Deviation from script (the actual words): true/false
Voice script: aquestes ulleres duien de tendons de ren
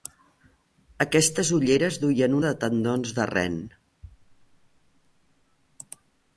false